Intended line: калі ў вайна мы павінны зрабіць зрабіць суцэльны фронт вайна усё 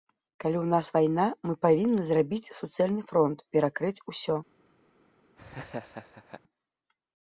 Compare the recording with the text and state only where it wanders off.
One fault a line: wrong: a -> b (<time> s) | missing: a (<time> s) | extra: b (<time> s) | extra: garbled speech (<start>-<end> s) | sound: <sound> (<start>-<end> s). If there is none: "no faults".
extra: нас (0.7 s)
missing: зрабіць (2.5 s)
wrong: вайна -> перакрыць (3.6 s)
sound: laugh (5.4-6.4 s)